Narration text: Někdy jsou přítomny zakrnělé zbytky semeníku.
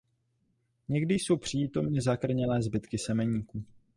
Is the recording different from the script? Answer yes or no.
no